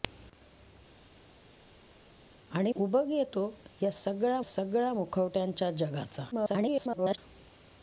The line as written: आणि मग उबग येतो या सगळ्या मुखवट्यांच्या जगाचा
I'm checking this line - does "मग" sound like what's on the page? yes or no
no